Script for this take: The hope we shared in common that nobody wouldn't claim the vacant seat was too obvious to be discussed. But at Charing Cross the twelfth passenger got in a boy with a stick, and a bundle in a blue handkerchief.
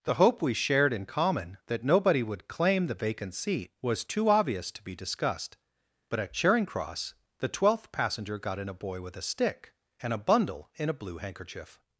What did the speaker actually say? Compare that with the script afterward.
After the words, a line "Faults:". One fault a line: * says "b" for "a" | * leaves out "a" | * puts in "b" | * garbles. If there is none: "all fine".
The hope we shared in common that nobody would claim the vacant seat was too obvious to be discussed. But at Charing Cross the twelfth passenger got in a boy with a stick, and a bundle in a blue handkerchief.
Faults:
* says "would" for "wouldn't"